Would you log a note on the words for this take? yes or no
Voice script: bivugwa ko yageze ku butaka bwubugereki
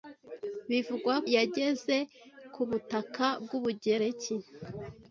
yes